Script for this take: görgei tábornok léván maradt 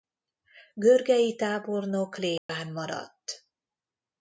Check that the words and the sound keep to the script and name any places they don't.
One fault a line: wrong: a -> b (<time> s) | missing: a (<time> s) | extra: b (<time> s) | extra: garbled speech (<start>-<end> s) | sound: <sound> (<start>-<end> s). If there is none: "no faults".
sound: dropout (2.4-2.5 s)